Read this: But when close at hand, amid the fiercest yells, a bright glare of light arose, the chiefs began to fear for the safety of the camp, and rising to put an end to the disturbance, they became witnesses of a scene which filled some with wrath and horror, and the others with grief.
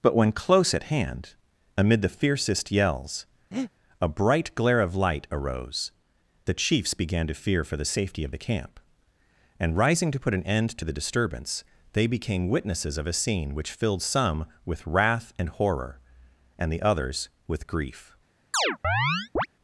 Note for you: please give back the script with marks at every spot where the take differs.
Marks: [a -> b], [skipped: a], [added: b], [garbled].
But when close at hand, amid the fiercest yells, a bright glare of light arose, the chiefs began to fear for the safety of the camp, and rising to put an end to the disturbance, they became witnesses of a scene which filled some with wrath and horror, and the others with grief.